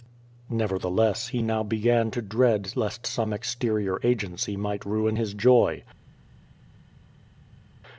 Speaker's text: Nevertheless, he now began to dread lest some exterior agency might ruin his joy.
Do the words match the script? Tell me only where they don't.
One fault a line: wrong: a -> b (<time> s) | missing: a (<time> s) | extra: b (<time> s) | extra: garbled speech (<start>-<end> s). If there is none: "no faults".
no faults